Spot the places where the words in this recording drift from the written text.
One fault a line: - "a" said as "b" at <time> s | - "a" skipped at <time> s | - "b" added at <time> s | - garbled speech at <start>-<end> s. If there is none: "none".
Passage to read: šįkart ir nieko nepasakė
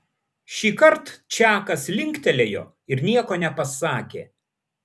- "čakas linktelėjo" added at 1.4 s